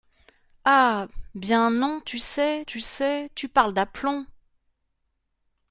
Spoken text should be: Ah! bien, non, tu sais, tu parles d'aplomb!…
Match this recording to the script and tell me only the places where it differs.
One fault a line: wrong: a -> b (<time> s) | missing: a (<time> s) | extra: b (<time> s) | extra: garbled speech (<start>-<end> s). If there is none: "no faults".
extra: sais tu (2.8 s)